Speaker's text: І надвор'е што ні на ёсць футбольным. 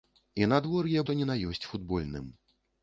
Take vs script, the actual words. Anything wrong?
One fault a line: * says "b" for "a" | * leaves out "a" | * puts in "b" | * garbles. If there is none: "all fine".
all fine